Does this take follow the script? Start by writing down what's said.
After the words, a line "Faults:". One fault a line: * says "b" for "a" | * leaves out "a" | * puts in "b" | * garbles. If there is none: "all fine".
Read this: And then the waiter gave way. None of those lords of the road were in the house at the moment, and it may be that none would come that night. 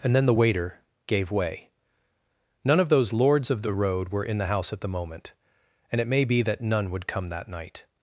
And then the waiter gave way. None of those lords of the road were in the house at the moment, and it may be that none would come that night.
Faults:
all fine